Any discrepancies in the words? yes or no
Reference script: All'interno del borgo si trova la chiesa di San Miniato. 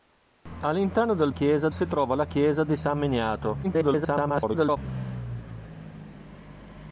yes